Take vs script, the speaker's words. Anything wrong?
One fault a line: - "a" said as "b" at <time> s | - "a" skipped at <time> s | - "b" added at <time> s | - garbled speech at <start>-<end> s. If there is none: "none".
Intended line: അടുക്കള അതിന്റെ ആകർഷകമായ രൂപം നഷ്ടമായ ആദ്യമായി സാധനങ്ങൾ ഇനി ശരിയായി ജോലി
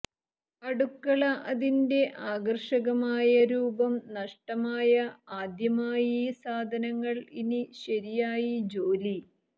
none